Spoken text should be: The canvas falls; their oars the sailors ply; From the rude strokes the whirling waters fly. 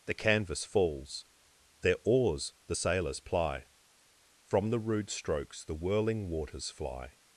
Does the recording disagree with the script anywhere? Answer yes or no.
no